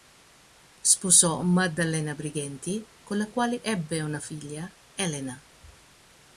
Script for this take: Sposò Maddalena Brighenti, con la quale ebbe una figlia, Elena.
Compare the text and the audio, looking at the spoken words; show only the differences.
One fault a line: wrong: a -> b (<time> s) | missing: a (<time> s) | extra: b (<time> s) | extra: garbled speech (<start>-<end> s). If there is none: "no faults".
no faults